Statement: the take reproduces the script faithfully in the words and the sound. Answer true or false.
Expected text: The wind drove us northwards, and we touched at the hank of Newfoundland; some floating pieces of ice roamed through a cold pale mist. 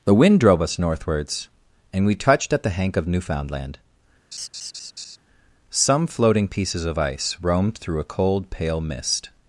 false